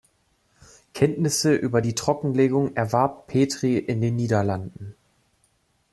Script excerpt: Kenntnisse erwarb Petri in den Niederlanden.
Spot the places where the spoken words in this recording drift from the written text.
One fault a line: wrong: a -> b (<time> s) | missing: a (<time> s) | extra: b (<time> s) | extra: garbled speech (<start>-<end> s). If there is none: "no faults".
extra: über die Trockenlegung (1.5 s)